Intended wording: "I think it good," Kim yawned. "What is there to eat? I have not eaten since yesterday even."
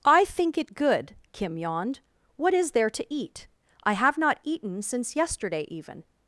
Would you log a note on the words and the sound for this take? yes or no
no